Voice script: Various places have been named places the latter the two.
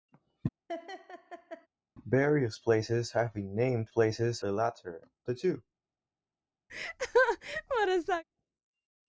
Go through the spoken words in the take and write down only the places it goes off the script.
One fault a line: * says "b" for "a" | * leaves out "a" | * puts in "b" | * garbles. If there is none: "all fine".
all fine